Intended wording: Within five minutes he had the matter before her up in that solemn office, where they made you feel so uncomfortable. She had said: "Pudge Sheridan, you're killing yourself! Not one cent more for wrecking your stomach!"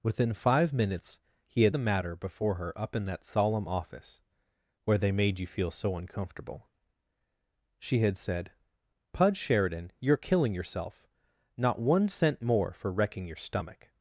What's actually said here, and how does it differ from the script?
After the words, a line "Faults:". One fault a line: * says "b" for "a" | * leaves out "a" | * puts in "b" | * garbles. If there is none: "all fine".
Within five minutes he had the matter before her up in that solemn office, where they made you feel so uncomfortable. She had said: "Pudge Sheridan, you're killing yourself! Not one cent more for wrecking your stomach!"
Faults:
all fine